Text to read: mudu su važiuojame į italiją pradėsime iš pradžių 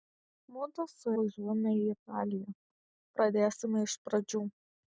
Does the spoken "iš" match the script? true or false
true